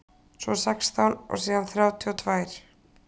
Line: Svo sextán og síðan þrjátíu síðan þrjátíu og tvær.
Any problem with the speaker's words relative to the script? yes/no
yes